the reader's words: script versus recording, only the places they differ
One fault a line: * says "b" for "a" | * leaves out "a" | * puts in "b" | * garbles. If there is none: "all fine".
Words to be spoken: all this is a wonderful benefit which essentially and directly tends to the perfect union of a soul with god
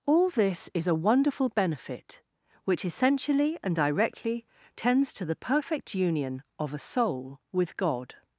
all fine